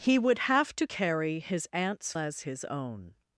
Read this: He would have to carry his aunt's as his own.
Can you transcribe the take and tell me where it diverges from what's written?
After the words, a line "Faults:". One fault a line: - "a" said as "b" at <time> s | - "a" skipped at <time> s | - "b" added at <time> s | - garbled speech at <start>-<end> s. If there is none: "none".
He would have to carry his aunt's as his own.
Faults:
none